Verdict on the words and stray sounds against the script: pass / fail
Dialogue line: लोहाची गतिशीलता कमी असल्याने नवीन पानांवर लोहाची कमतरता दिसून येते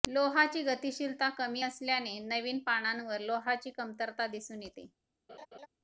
fail